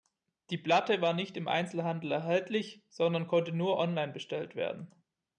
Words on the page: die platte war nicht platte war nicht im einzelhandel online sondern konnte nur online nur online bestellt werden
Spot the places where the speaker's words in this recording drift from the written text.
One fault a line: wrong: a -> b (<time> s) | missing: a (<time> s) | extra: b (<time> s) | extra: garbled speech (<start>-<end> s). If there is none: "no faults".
missing: platte war nicht (1.4 s)
wrong: online -> erhältlich (2.1 s)
missing: nur online (4.1 s)